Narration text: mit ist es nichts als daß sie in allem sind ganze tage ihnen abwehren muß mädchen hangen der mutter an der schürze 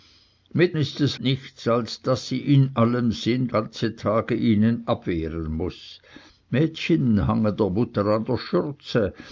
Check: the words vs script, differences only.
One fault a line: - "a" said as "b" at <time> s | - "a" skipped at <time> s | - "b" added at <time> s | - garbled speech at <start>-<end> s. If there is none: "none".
none